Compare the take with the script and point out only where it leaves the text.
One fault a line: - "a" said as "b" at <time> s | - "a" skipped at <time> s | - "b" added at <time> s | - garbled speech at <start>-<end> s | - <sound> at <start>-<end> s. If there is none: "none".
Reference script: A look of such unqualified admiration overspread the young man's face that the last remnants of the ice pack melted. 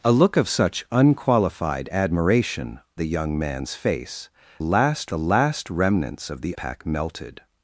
- "overspread" skipped at 2.8 s
- "that" said as "last" at 4.6 s
- "ice" skipped at 6.6 s